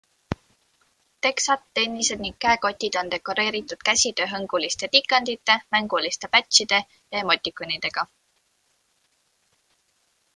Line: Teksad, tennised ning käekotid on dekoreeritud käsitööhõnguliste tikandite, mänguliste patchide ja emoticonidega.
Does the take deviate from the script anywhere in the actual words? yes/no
no